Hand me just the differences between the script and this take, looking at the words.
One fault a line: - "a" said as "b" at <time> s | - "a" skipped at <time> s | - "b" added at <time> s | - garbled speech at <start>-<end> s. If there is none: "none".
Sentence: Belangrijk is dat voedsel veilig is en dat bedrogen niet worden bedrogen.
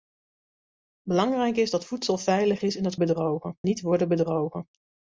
none